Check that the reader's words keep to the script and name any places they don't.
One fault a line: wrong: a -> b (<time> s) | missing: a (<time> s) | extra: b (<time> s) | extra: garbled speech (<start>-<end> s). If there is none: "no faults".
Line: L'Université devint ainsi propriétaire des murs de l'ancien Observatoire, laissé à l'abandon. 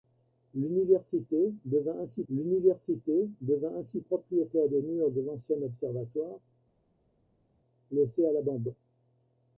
extra: l'université devint ainsi (2.3 s)